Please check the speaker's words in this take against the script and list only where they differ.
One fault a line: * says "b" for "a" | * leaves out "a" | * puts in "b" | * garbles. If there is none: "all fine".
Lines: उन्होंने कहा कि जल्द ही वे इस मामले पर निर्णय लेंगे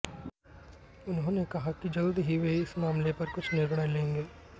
* puts in "कुछ"